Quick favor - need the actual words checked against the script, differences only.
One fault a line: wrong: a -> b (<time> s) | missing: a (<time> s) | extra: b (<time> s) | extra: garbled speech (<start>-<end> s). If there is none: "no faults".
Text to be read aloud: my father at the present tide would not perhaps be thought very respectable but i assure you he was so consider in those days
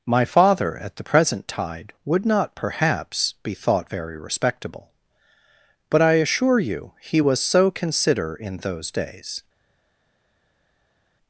no faults